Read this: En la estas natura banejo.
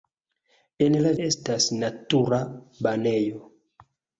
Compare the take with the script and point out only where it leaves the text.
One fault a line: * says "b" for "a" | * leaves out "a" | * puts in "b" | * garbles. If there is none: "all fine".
all fine